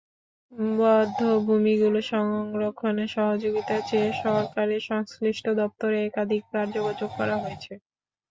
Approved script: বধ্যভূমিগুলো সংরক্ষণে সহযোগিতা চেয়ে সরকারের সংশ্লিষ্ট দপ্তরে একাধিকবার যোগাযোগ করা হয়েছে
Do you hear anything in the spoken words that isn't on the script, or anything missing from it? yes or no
no